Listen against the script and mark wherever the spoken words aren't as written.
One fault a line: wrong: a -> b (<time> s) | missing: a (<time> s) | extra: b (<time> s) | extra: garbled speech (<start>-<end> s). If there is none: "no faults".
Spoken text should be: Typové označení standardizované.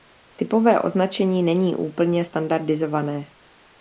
extra: není úplně (1.4 s)